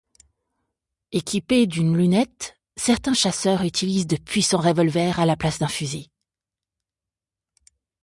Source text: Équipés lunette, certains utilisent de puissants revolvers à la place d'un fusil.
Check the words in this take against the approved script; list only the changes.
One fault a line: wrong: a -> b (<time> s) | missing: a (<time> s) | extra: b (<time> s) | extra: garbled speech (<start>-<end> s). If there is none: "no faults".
extra: d'une (1.7 s)
extra: chasseurs (3.1 s)